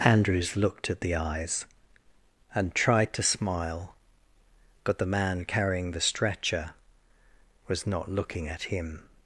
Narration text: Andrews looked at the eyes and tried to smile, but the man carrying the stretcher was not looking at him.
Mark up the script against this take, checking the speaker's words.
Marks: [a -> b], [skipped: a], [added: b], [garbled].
Andrews looked at the eyes and tried to smile, but the man carrying the stretcher was not looking at him.